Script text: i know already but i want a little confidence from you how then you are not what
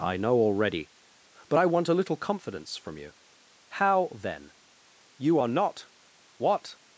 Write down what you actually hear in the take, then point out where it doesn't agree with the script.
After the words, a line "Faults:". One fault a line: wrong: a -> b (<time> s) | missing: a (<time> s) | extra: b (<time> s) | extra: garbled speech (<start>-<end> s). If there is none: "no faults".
i know already but i want a little confidence from you how then you are not what
Faults:
no faults